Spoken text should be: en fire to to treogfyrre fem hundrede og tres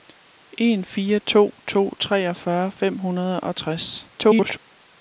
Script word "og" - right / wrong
right